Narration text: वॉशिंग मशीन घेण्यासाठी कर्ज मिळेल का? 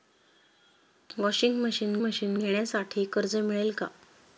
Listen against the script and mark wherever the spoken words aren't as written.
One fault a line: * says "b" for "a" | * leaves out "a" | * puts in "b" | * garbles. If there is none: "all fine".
* puts in "मशीन"